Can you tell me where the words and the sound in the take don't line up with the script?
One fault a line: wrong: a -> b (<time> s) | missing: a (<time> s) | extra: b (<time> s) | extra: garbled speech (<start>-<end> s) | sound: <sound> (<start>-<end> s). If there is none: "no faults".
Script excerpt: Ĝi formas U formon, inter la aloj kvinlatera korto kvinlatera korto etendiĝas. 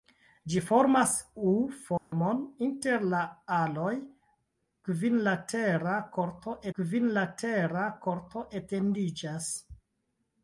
sound: dropout (2.0-2.1 s)